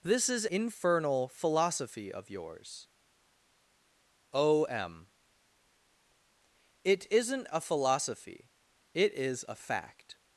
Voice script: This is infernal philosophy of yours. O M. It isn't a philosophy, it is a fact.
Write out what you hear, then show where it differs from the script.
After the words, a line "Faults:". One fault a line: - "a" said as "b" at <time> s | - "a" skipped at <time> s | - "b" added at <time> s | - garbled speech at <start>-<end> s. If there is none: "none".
This is infernal philosophy of yours. O M. It isn't a philosophy, it is a fact.
Faults:
none